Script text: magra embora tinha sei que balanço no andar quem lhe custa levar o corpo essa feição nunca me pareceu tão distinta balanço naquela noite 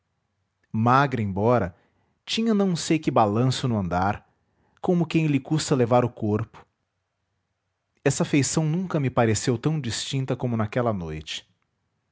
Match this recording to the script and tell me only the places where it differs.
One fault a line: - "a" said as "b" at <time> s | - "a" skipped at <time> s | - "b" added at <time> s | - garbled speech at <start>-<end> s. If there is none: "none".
- "não" added at 2.5 s
- "como" added at 4.8 s
- "balanço" said as "como" at 10.4 s